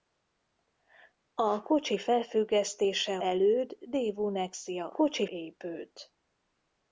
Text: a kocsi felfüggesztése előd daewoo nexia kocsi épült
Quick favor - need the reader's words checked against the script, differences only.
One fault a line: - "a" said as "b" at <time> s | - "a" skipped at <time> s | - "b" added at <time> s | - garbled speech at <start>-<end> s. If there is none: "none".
none